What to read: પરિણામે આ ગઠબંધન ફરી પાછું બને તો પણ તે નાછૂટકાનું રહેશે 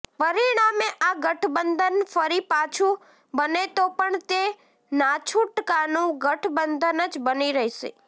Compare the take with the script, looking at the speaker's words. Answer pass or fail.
fail